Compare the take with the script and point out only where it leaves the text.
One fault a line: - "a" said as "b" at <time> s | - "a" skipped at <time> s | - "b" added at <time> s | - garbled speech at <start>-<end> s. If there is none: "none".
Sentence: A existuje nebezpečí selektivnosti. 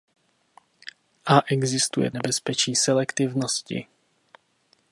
none